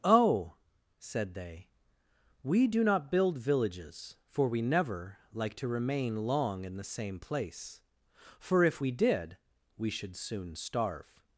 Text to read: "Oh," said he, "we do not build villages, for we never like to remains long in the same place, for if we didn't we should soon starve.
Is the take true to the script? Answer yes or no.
no